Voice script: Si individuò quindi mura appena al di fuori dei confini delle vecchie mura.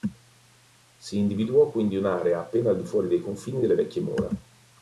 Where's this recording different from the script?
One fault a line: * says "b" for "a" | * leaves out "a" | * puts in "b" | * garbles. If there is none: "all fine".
* says "un'area" for "mura"